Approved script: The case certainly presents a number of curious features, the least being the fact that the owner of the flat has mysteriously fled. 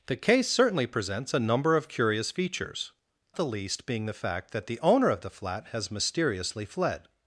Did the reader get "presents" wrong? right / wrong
right